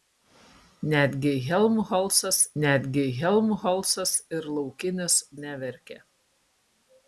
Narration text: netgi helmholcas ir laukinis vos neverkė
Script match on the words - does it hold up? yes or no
no